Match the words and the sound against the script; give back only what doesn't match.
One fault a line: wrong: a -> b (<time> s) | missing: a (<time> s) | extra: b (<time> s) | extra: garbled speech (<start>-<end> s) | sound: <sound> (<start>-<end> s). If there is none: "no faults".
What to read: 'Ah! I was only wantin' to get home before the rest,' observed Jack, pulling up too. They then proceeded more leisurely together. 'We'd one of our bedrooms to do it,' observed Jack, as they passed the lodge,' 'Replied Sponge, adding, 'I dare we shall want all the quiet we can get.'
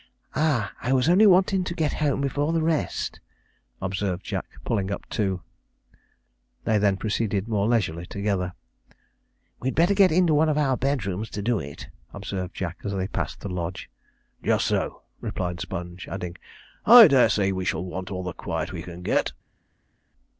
extra: better get into (9.8 s)
extra: Just so (14.4 s)
extra: say (17.3 s)